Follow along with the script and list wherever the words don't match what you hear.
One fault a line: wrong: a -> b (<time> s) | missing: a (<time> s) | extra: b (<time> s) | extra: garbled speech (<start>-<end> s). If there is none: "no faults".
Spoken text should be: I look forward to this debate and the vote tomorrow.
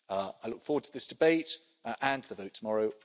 no faults